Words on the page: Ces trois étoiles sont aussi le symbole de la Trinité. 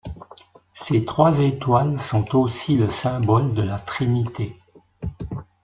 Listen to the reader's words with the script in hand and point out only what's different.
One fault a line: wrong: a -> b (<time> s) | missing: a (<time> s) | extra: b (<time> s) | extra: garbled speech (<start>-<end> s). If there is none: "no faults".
no faults